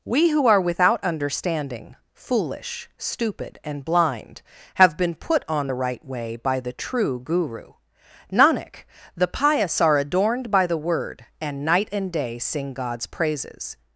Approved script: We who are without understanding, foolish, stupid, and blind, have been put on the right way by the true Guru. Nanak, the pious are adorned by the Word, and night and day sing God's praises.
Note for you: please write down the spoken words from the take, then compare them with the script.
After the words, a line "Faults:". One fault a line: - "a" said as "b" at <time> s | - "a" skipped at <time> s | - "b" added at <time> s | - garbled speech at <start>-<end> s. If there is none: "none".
We who are without understanding, foolish, stupid, and blind, have been put on the right way by the true Guru. Nanak, the pious are adorned by the Word, and night and day sing God's praises.
Faults:
none